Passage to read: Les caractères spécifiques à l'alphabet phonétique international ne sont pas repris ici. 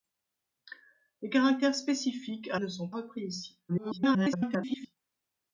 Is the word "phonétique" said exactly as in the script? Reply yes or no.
no